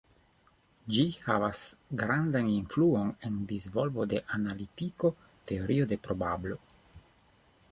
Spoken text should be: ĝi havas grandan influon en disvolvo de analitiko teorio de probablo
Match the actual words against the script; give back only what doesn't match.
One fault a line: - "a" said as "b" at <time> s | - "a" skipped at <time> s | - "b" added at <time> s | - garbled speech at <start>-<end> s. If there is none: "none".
none